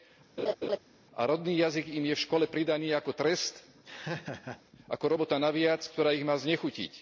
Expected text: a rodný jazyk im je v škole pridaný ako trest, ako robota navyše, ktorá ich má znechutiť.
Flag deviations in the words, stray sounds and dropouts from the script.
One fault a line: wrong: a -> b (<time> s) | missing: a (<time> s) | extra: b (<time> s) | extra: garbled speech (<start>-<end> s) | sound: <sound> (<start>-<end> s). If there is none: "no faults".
sound: laugh (0.4-0.8 s)
sound: laugh (3.9-4.6 s)